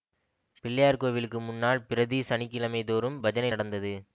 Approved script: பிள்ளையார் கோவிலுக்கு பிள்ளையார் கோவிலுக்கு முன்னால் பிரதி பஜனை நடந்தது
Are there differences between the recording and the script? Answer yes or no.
yes